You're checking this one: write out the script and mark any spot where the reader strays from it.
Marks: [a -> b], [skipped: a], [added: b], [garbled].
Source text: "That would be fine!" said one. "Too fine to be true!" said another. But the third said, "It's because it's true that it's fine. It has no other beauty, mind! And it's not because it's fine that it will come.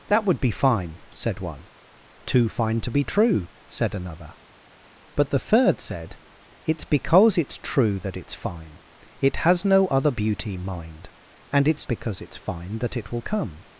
"That would be fine!" said one. "Too fine to be true!" said another. But the third said, "It's because it's true that it's fine. It has no other beauty, mind! And it's [skipped: not] because it's fine that it will come.